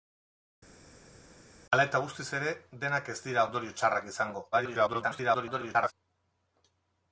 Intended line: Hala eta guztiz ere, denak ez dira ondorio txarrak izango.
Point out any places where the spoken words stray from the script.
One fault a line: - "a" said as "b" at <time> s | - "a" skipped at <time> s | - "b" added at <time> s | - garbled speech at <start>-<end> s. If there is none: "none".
- garbled speech at 4.5-5.9 s